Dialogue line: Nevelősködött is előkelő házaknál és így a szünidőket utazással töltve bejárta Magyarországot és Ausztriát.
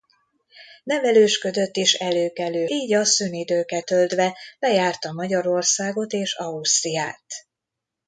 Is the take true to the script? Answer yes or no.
no